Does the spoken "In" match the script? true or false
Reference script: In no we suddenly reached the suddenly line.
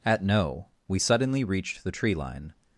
false